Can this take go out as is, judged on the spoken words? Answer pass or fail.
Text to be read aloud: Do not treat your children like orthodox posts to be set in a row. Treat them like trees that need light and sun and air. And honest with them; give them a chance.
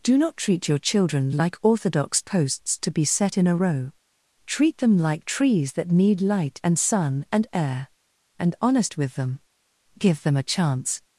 pass